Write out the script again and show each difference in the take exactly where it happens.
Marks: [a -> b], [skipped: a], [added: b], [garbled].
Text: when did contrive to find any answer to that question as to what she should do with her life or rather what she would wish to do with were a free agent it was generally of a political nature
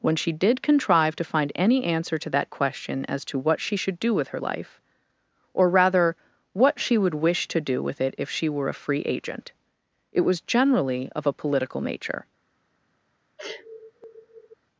when [added: she] did contrive to find any answer to that question as to what she should do with her life or rather what she would wish to do with [added: it if she] were a free agent it was generally of a political nature